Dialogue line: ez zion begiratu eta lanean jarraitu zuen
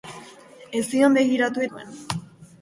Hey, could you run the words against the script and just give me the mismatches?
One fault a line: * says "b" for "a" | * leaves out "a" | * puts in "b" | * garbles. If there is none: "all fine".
* leaves out "eta lanean jarraitu"